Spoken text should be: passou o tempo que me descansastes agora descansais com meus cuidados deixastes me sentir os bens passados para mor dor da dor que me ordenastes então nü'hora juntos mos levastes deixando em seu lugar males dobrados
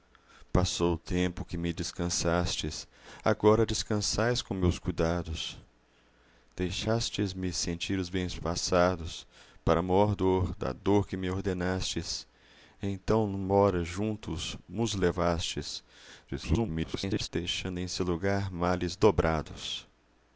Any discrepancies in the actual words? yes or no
yes